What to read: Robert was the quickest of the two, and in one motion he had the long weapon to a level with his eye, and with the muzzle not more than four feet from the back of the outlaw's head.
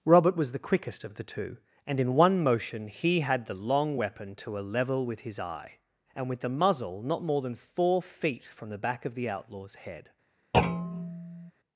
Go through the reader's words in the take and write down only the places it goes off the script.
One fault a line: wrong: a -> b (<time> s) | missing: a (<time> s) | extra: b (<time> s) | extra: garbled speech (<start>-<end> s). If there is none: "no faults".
no faults